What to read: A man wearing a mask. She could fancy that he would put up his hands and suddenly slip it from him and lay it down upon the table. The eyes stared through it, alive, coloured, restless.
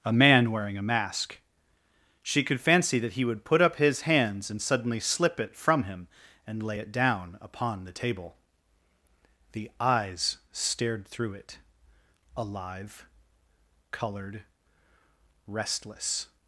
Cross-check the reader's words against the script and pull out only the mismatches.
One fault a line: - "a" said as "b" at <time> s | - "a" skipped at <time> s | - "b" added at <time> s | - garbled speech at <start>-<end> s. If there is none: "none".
none